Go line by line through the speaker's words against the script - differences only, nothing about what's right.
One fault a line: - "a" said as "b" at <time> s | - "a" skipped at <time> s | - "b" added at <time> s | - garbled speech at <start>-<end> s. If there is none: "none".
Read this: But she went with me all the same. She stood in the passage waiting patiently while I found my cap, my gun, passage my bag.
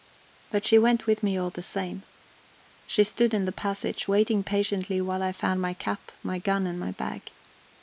- "passage" said as "and" at 6.7 s